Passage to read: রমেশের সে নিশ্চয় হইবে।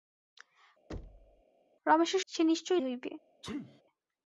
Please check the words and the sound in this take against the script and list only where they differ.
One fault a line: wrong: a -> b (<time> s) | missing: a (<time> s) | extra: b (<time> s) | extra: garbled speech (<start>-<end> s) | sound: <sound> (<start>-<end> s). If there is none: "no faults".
sound: thud (0.9-1.4 s)
sound: sneeze (3.4-3.8 s)